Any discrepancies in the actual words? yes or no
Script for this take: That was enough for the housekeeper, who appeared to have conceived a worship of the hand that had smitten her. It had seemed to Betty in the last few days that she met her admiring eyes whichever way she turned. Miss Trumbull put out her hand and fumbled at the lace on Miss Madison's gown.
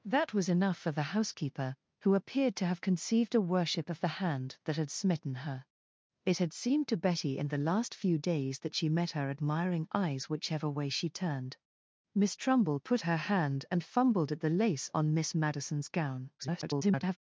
yes